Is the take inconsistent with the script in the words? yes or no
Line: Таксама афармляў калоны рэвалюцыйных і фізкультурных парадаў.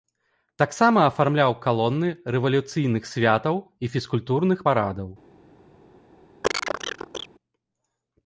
yes